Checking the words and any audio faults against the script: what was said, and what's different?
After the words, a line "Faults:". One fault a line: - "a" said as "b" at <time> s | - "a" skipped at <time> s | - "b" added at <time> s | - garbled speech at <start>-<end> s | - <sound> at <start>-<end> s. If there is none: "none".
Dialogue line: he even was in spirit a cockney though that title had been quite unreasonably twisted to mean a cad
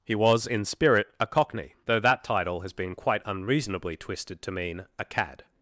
he was in spirit a cockney though that title has been quite unreasonably twisted to mean a cad
Faults:
- "even" skipped at 0.1 s
- "had" said as "has" at 2.6 s